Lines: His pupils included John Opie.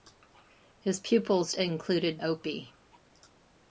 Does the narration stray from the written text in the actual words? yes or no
yes